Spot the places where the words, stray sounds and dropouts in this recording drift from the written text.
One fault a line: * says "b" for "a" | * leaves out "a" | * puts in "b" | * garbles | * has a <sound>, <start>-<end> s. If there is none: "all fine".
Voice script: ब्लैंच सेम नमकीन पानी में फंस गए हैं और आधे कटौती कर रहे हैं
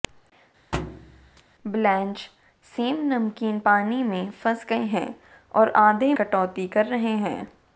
* has a thud, 0.7-1.4 s